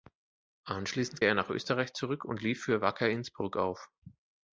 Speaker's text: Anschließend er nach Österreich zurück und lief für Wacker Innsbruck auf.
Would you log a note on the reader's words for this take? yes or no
no